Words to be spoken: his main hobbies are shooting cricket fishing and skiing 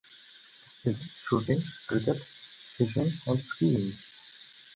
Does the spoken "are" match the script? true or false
false